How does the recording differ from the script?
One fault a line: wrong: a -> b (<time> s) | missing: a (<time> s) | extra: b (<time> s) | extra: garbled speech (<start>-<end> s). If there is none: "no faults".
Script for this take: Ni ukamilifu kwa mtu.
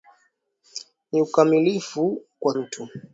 no faults